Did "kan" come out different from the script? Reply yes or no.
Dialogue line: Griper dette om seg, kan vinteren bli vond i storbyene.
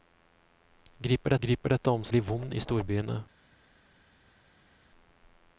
yes